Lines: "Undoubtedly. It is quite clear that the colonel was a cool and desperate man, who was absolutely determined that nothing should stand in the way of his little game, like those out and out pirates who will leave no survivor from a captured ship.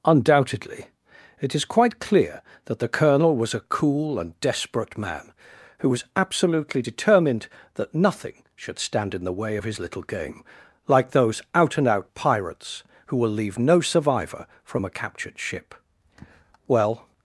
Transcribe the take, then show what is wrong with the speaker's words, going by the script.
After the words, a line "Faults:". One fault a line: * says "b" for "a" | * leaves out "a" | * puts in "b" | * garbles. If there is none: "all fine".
"Undoubtedly. It is quite clear that the colonel was a cool and desperate man, who was absolutely determined that nothing should stand in the way of his little game, like those out and out pirates who will leave no survivor from a captured ship. Well
Faults:
* puts in "Well"